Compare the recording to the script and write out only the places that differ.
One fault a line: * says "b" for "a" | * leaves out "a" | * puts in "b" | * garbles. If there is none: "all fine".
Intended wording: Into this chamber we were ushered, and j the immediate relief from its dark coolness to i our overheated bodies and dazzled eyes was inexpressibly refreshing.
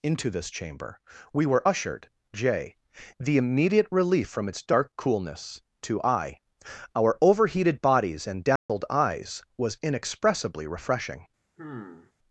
* leaves out "and"